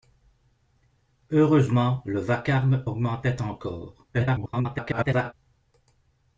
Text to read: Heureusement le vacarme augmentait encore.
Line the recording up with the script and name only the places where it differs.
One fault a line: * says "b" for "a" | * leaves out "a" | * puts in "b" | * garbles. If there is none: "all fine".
* garbles